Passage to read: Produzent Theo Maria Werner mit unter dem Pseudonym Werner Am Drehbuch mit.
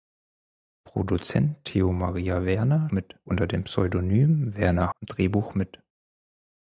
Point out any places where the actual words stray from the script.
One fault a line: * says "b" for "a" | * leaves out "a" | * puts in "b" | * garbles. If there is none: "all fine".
all fine